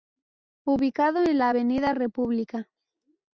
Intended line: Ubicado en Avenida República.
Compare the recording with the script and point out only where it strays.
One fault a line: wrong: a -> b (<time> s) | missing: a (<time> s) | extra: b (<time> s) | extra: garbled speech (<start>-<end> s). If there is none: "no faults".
extra: la (1.4 s)